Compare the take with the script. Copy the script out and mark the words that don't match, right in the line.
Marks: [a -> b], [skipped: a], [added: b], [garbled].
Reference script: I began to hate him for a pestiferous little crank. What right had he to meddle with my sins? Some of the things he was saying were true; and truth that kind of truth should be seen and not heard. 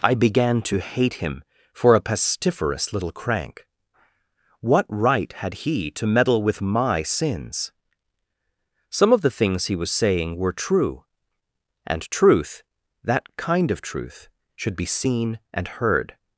I began to hate him for a pestiferous little crank. What right had he to meddle with my sins? Some of the things he was saying were true; and truth that kind of truth should be seen and [skipped: not] heard.